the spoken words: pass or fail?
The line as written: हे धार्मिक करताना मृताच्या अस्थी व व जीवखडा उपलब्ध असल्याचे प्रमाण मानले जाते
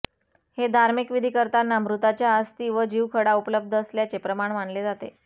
fail